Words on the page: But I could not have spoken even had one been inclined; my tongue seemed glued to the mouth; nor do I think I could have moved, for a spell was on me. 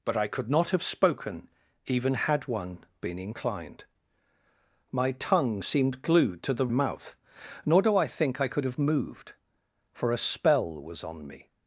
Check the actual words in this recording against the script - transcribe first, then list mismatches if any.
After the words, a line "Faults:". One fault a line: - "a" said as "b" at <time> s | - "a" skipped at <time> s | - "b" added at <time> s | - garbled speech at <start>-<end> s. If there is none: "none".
But I could not have spoken even had one been inclined; my tongue seemed glued to the mouth; nor do I think I could have moved, for a spell was on me.
Faults:
none